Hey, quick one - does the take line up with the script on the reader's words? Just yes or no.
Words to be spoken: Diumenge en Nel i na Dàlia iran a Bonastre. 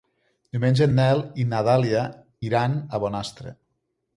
yes